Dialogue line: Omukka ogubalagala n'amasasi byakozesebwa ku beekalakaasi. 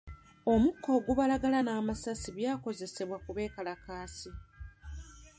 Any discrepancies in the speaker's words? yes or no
no